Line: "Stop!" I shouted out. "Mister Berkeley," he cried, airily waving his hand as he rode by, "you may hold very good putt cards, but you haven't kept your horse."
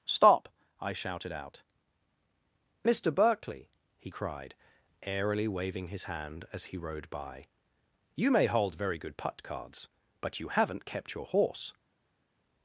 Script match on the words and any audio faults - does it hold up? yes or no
yes